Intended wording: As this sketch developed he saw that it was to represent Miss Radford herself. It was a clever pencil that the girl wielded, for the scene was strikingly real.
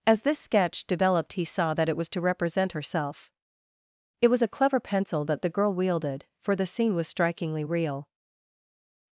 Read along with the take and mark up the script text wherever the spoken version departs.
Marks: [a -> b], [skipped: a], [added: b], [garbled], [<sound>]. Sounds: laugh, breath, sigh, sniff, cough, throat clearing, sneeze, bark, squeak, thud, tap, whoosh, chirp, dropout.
As this sketch developed he saw that it was to represent [skipped: Miss Radford] herself. It was a clever pencil that the girl wielded, for the scene was strikingly real.